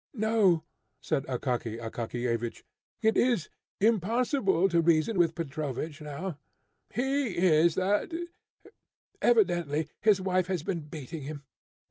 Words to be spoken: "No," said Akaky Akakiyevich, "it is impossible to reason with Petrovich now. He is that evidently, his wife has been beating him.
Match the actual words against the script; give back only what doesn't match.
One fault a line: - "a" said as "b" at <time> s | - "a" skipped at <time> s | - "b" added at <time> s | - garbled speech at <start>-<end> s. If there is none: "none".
none